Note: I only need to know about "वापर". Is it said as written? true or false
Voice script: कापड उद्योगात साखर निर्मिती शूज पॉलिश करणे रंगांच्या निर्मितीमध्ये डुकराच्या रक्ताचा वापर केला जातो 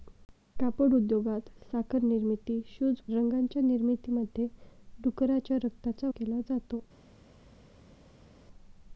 false